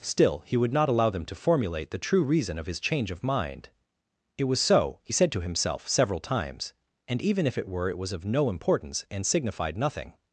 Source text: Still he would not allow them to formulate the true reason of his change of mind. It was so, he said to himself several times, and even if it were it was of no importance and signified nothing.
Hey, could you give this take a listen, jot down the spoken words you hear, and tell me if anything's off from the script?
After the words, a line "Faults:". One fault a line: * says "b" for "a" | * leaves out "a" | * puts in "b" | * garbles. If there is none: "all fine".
Still he would not allow them to formulate the true reason of his change of mind. It was so, he said to himself several times, and even if it were it was of no importance and signified nothing.
Faults:
all fine